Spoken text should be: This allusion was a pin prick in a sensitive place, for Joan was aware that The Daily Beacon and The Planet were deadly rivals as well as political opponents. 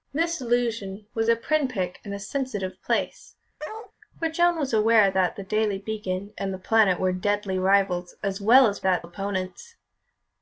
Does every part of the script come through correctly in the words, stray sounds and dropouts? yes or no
no